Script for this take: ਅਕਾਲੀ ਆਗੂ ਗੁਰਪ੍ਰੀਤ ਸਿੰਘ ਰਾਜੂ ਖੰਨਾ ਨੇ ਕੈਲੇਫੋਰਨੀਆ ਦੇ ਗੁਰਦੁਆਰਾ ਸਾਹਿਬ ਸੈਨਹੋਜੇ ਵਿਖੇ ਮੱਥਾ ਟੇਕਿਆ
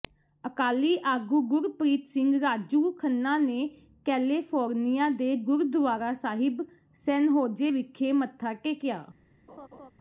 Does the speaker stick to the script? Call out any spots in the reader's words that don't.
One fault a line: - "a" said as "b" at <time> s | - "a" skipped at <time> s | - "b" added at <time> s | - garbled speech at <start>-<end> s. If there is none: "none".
none